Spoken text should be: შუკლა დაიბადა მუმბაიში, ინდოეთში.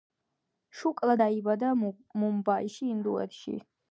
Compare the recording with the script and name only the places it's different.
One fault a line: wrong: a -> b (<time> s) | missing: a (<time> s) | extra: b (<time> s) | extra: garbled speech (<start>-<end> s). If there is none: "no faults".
no faults